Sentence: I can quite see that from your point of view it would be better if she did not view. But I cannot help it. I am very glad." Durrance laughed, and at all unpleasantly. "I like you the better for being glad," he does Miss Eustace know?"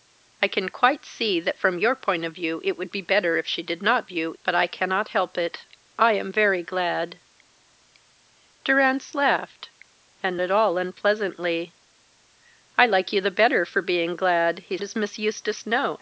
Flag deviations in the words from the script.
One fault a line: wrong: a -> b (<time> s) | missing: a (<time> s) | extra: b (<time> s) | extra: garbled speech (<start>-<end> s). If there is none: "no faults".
no faults